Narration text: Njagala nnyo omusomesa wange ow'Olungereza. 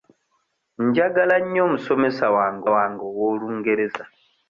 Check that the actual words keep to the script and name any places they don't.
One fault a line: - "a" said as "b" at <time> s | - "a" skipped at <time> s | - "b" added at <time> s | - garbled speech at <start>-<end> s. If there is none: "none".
- "wange" added at 2.7 s